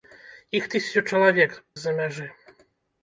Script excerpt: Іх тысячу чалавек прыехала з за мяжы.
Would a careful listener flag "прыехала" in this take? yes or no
yes